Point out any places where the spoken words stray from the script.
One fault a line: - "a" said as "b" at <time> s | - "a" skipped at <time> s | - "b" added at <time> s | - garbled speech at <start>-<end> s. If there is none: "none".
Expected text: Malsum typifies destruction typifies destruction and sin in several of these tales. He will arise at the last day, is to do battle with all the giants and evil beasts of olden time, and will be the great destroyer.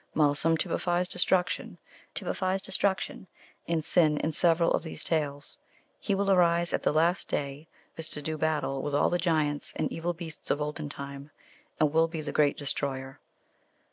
none